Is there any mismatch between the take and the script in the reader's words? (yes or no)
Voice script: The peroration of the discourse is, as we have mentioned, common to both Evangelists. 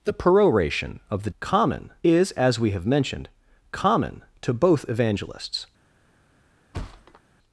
yes